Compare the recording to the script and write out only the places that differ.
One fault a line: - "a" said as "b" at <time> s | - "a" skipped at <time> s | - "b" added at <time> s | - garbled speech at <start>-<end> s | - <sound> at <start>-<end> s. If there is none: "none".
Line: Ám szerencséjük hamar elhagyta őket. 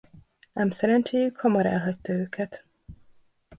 none